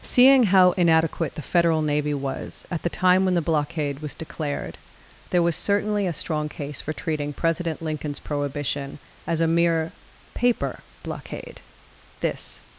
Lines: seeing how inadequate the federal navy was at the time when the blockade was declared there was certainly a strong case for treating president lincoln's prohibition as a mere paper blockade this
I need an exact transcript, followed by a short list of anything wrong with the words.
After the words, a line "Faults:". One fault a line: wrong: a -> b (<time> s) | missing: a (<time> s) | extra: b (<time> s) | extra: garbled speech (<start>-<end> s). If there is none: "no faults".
seeing how inadequate the federal navy was at the time when the blockade was declared there was certainly a strong case for treating president lincoln's prohibition as a mere paper blockade this
Faults:
no faults